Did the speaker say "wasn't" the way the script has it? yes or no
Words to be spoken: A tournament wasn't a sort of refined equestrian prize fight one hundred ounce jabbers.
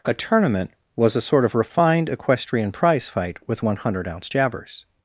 no